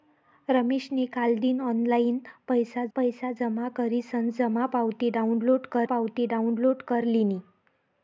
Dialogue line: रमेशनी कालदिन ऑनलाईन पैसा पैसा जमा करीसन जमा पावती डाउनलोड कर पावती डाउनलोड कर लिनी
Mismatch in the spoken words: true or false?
false